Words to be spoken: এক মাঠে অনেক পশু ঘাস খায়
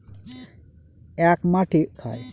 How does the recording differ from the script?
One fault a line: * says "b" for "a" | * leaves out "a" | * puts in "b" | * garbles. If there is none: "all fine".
* leaves out "অনেক পশু ঘাস"